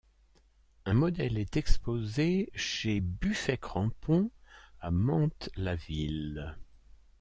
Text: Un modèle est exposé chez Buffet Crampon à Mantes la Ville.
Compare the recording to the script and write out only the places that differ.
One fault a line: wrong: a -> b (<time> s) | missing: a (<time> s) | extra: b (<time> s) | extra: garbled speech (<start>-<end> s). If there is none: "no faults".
no faults